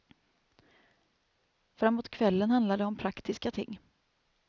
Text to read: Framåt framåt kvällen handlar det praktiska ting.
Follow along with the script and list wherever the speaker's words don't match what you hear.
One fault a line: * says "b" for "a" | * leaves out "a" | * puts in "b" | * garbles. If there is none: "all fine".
* leaves out "framåt"
* puts in "om"